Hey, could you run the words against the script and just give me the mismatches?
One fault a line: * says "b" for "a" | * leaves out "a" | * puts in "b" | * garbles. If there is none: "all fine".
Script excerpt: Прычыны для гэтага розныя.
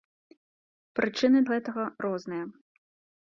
* leaves out "для"